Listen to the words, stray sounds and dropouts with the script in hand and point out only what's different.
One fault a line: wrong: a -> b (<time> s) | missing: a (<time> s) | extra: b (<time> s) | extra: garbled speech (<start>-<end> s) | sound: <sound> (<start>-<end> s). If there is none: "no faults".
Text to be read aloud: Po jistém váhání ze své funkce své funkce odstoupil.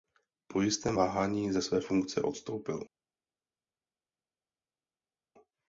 missing: své funkce (2.2 s)